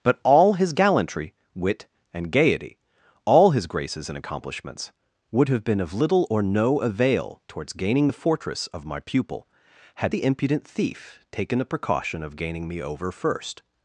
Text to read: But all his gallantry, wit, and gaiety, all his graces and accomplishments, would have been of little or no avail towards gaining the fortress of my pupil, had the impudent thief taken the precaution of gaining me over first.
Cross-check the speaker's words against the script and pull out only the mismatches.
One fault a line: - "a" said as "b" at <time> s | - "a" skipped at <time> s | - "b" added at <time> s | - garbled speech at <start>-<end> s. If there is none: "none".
none